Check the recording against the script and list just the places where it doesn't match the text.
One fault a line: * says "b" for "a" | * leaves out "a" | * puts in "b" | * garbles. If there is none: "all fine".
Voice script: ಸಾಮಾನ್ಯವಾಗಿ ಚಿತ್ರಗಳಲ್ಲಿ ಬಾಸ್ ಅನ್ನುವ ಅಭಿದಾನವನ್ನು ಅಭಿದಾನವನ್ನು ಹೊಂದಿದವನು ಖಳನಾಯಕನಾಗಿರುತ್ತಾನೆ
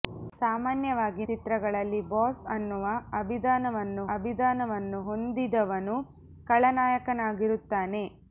all fine